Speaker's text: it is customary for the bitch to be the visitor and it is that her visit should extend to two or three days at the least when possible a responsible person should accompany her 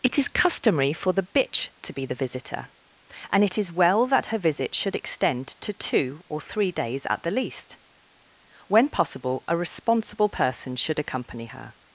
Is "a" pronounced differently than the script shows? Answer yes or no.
no